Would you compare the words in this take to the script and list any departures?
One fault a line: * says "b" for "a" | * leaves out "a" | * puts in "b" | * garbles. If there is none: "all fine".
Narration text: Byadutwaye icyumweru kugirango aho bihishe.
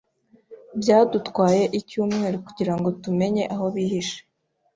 * puts in "tumenye"